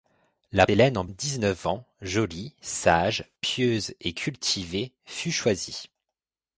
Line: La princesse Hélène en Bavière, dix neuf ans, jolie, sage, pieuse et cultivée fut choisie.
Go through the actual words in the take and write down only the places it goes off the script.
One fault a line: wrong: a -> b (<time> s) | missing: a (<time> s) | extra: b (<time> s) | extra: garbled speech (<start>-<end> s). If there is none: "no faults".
missing: princesse (0.7 s)
missing: Bavière (1.1 s)